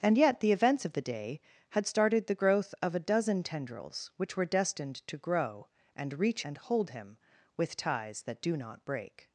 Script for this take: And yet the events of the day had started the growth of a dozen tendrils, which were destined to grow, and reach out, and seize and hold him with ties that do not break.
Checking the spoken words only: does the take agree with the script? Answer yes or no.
no